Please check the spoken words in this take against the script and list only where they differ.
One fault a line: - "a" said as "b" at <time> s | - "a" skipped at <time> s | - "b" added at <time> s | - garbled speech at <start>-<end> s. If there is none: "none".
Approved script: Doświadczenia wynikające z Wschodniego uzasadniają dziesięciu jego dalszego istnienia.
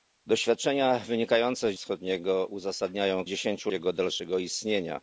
none